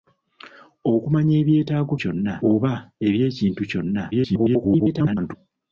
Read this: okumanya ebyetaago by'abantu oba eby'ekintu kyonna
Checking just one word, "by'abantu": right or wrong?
wrong